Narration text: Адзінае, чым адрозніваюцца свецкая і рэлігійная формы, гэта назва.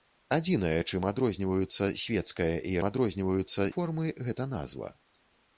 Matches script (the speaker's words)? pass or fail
fail